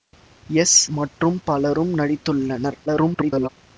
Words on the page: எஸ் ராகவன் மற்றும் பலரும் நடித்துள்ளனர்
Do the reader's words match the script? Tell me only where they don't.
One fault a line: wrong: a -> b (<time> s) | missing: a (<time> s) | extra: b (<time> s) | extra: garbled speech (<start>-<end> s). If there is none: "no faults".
missing: ராகவன் (0.8 s)
extra: garbled speech (2.9-3.5 s)